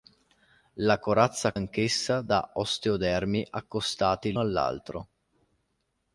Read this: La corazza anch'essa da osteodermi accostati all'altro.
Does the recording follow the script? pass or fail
pass